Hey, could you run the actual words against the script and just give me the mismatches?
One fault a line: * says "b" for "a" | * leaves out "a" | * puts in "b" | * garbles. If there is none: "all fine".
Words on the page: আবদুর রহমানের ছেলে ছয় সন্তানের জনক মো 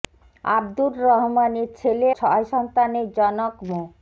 all fine